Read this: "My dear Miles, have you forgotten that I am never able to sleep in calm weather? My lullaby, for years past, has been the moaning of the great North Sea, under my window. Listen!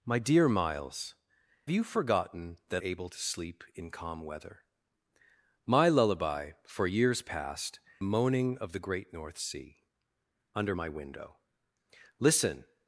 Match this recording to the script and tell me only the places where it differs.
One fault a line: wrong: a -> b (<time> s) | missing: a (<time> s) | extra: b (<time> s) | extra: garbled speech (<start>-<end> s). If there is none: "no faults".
missing: have (1.1 s)
missing: I am never (2.8 s)
missing: has been (7.8 s)